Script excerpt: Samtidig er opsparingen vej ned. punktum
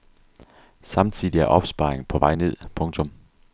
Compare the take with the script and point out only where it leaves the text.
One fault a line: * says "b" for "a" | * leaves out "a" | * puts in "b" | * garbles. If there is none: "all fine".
* puts in "på"